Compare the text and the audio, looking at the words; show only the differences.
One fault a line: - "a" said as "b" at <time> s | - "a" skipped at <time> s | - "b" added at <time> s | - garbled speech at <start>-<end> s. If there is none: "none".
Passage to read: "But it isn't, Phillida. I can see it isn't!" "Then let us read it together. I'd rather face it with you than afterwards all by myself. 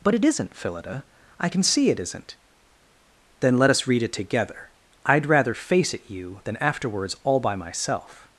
- "with" skipped at 6.1 s